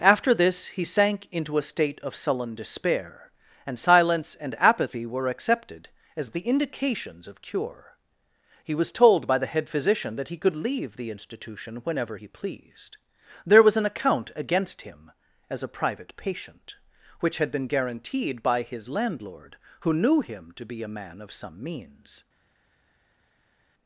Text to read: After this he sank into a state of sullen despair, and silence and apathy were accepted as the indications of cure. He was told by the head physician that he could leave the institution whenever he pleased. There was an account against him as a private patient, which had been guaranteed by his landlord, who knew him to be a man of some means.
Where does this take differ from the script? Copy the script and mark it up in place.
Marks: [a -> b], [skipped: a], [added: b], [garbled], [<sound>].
After this he sank into a state of sullen despair, and silence and apathy were accepted as the indications of cure. He was told by the head physician that he could leave the institution whenever he pleased. There was an account against him as a private patient, which had been guaranteed by his landlord, who knew him to be a man of some means.